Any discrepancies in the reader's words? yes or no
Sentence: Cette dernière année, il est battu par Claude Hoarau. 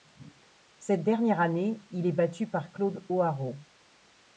no